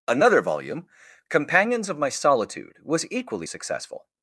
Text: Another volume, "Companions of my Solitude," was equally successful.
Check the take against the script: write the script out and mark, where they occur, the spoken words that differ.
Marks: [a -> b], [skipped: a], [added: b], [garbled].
Another volume, "Companions of my Solitude," was equally successful.